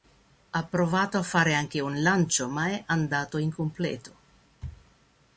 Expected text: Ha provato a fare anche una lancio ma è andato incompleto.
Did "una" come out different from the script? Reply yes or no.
yes